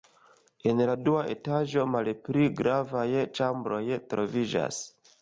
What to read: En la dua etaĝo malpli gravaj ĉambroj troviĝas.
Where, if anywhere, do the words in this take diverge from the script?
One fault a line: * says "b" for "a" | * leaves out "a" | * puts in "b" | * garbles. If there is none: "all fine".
all fine